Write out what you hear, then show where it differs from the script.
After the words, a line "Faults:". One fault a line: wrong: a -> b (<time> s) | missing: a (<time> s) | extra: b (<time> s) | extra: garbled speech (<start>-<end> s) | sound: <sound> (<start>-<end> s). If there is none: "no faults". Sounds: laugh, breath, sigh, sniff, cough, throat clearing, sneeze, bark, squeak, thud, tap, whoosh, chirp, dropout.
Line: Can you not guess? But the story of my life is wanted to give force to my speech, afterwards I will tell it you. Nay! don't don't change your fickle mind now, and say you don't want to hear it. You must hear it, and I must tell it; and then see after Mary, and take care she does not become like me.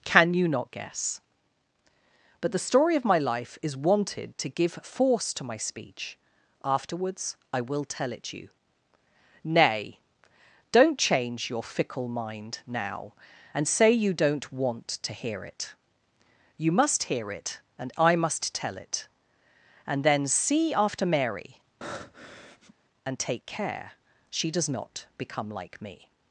Can you not guess? But the story of my life is wanted to give force to my speech, afterwards I will tell it you. Nay! don't change your fickle mind now, and say you don't want to hear it. You must hear it, and I must tell it; and then see after Mary, and take care she does not become like me.
Faults:
missing: don't (11.0 s)
sound: breath (21.8-22.7 s)